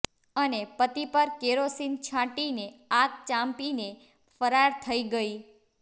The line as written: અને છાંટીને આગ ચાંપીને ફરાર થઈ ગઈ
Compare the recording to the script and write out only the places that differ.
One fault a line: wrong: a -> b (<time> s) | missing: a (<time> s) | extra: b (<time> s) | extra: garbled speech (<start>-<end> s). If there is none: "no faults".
extra: પતિ પર કેરોસીન (0.8 s)